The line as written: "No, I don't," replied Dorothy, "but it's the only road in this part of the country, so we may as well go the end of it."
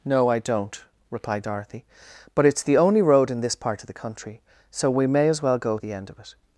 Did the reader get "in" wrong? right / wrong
right